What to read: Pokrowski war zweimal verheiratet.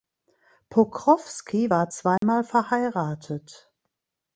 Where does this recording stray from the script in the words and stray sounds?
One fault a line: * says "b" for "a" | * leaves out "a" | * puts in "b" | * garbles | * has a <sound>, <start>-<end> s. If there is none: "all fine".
* has a dropout, 2.2-2.2 s